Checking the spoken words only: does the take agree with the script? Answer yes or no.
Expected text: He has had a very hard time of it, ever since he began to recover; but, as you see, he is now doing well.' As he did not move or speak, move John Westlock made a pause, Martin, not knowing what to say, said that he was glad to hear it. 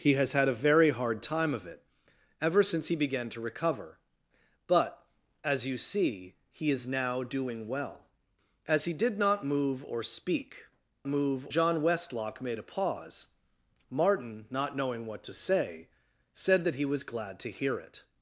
yes